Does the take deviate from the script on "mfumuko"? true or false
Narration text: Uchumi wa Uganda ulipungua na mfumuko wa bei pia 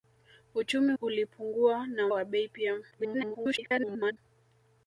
true